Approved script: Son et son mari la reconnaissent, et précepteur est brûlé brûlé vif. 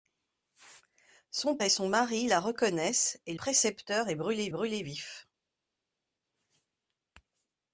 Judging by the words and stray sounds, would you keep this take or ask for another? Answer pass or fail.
pass